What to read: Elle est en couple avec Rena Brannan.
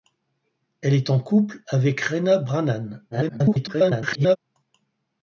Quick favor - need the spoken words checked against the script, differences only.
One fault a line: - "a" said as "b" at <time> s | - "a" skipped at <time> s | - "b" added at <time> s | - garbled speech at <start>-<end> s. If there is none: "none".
- garbled speech at 3.1-4.4 s